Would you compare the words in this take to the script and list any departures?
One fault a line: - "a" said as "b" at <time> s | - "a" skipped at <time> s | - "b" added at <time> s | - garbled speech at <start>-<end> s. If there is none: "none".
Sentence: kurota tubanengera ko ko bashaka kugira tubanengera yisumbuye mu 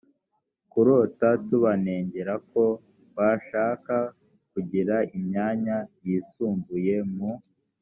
- "ko" skipped at 2.6 s
- "tubanengera" said as "imyanya" at 5.2 s